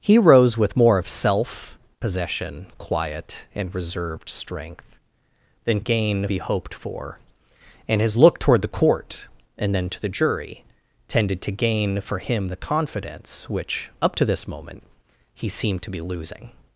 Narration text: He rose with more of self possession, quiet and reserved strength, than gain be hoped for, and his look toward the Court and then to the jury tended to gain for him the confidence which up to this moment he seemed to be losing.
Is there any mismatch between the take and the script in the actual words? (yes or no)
no